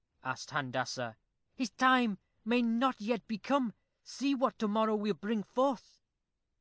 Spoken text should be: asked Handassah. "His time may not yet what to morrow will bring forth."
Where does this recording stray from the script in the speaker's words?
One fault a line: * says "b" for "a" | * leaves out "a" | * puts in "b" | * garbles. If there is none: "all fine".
* puts in "be come See"